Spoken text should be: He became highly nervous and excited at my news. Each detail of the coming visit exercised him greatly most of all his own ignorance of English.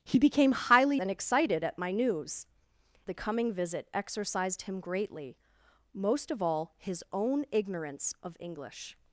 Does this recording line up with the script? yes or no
no